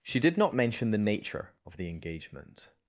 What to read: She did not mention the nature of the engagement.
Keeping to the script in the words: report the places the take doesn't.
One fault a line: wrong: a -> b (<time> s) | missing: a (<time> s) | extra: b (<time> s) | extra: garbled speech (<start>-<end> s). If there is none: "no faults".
no faults